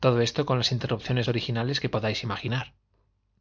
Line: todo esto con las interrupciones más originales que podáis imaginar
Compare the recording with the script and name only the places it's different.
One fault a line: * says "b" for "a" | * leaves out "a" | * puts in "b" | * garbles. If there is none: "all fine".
* leaves out "más"